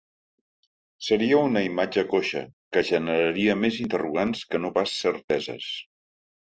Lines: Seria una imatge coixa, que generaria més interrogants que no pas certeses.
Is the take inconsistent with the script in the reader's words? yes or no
no